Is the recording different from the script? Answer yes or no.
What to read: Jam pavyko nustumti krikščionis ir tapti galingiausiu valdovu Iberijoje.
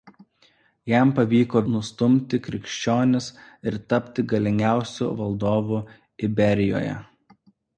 no